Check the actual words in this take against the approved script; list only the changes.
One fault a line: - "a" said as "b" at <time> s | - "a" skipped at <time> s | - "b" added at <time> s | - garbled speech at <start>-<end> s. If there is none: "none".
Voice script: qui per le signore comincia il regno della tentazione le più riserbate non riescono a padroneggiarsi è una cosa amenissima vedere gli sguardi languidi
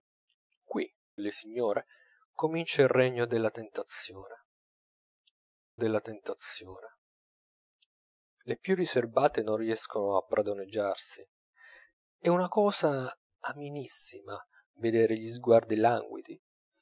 - "per" skipped at 0.9 s
- "della tentazione" added at 5.7 s